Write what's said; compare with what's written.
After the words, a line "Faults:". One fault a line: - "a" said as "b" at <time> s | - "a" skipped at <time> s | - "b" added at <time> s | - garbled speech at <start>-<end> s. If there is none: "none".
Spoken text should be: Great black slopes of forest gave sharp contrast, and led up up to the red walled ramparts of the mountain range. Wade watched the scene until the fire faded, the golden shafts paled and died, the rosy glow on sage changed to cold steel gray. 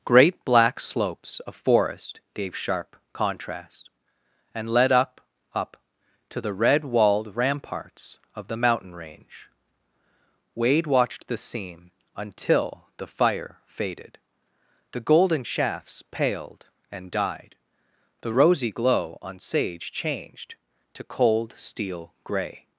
Great black slopes of forest gave sharp contrast, and led up up to the red walled ramparts of the mountain range. Wade watched the scene until the fire faded, the golden shafts paled and died, the rosy glow on sage changed to cold steel gray.
Faults:
none